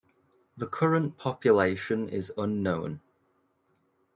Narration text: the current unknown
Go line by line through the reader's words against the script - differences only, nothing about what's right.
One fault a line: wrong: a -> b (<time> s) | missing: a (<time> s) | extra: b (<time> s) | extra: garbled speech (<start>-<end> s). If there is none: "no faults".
extra: population is (1.2 s)